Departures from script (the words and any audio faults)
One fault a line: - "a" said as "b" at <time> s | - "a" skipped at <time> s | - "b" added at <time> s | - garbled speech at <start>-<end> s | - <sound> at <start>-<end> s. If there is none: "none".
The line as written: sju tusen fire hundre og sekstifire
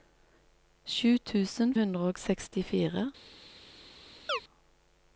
- "fire" skipped at 1.8 s
- chirp at 4.3-4.4 s